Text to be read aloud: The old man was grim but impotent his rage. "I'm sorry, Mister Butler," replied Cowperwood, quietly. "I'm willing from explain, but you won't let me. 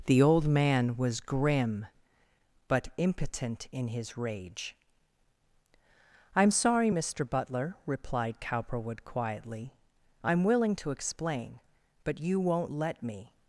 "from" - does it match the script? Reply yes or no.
no